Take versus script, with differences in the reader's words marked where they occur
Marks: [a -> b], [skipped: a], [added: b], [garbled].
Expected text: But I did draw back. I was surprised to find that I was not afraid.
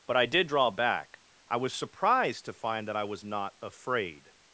But I did draw back. I was surprised to find that I was not afraid.